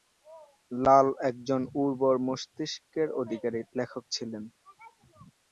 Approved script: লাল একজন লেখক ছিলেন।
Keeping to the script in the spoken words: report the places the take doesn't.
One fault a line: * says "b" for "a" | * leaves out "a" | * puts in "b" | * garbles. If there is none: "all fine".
* puts in "উর্বর মস্তিষ্কের অধিকারী"